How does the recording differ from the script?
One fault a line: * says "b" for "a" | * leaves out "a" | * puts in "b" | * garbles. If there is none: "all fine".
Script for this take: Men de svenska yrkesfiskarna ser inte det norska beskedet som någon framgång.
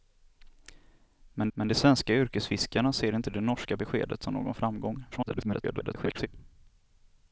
* puts in "men"
* garbles